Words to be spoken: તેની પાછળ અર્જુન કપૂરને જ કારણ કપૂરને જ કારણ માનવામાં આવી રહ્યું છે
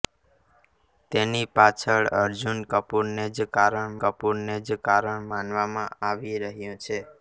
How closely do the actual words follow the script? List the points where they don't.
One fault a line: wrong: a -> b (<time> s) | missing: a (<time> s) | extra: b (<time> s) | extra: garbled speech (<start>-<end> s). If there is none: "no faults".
no faults